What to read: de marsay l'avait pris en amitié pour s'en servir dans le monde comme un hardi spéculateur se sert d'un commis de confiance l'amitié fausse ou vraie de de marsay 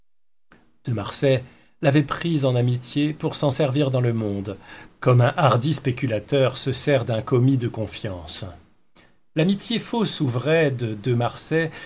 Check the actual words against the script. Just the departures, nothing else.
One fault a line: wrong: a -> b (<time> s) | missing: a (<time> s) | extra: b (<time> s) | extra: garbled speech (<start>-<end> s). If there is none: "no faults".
no faults